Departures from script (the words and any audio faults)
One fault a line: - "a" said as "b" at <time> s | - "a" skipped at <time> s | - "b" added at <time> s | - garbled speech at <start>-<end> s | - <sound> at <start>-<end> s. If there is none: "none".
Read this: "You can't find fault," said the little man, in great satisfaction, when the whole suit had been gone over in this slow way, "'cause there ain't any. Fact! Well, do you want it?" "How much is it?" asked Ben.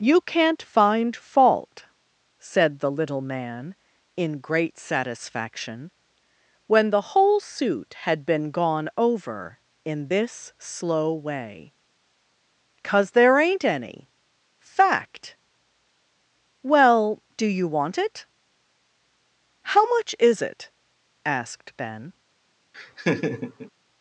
- laugh at 22.7-23.7 s